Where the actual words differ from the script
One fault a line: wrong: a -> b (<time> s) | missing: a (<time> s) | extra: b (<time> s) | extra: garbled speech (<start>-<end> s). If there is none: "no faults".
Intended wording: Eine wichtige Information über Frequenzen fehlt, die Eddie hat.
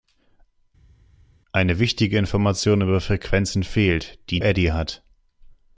no faults